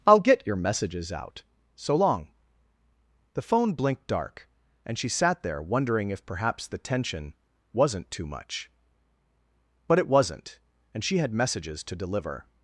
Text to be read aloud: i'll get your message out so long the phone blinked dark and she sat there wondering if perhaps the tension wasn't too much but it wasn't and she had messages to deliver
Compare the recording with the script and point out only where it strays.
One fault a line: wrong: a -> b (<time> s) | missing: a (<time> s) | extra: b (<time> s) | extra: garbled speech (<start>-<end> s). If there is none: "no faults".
wrong: message -> messages (0.6 s)